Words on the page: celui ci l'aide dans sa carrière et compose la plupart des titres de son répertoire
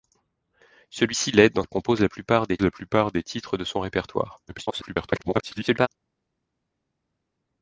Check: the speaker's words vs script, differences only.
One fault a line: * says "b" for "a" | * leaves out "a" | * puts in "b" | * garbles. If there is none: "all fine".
* says "et compose la plupart des" for "sa carrière et compose"
* garbles